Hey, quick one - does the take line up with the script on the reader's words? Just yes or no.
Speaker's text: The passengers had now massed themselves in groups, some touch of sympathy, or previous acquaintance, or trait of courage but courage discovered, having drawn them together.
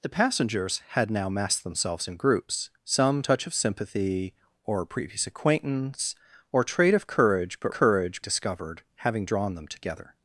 yes